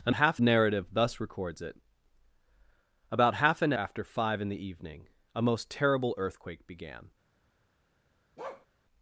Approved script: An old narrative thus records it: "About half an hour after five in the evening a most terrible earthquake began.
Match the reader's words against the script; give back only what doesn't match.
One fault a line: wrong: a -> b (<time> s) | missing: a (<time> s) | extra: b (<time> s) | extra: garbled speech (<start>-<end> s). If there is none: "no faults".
wrong: old -> half (0.1 s)
missing: hour (3.7 s)